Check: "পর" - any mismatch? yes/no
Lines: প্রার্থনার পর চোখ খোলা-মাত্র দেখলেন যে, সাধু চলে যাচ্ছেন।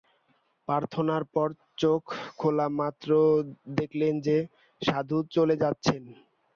no